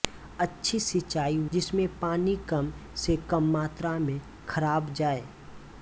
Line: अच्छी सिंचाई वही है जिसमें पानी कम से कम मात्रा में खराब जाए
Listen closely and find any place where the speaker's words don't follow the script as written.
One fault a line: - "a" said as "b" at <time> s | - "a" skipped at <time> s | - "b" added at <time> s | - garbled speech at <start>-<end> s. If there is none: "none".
- "वही है" skipped at 1.4 s